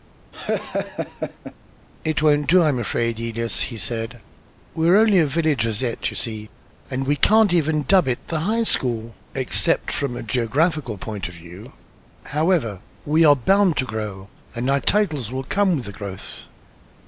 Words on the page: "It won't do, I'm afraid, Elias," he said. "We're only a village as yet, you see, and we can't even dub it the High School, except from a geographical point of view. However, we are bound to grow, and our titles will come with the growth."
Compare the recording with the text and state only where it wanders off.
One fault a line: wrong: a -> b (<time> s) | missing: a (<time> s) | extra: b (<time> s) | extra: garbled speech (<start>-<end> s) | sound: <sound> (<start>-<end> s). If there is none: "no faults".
sound: laugh (0.3-1.5 s)